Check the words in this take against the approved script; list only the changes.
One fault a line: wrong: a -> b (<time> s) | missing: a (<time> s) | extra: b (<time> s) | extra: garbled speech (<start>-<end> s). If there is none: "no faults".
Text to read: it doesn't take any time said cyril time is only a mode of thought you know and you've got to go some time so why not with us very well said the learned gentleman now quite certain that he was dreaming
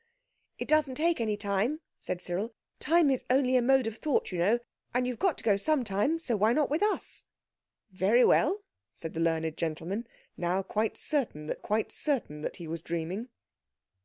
extra: quite certain that (11.6 s)